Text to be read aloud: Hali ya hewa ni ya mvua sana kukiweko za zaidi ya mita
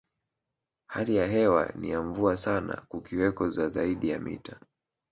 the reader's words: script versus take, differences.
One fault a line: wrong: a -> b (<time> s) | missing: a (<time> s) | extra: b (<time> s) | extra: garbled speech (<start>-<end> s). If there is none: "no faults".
no faults